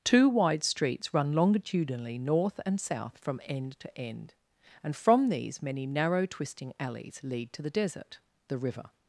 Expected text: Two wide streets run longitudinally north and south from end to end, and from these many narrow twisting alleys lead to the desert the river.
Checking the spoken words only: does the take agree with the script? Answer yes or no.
yes